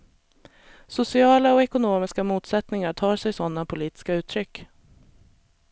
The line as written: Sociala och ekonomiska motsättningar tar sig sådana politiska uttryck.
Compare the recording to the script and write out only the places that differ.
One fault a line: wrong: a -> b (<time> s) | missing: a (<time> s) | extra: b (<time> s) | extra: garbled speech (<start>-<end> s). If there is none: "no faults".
no faults